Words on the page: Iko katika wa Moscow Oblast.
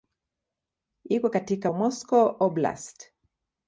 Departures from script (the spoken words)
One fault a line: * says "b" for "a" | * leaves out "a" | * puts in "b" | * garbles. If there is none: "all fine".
all fine